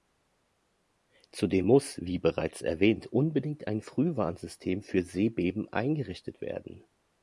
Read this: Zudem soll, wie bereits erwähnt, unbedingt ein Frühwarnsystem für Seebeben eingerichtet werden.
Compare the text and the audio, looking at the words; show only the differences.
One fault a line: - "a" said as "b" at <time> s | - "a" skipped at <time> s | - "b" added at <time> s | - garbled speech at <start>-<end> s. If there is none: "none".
- "soll" said as "muss" at 1.6 s